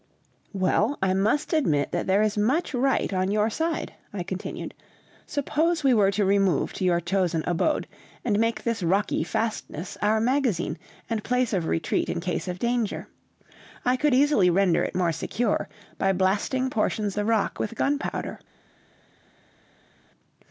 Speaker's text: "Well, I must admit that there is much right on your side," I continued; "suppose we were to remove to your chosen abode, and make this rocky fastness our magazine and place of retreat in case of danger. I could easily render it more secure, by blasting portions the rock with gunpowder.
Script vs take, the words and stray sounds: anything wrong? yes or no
no